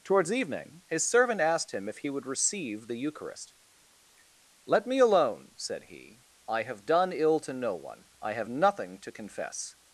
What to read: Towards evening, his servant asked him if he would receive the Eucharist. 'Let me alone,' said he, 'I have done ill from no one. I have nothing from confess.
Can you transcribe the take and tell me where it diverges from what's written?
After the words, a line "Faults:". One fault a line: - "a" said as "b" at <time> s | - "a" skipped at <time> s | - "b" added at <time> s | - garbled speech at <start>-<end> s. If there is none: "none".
Towards evening, his servant asked him if he would receive the Eucharist. 'Let me alone,' said he, 'I have done ill to no one. I have nothing to confess.
Faults:
- "from" said as "to" at 7.4 s
- "from" said as "to" at 9.0 s